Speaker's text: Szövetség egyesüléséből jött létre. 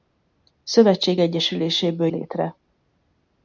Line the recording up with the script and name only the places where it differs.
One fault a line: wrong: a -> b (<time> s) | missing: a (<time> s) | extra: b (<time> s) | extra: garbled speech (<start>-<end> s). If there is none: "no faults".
missing: jött (2.1 s)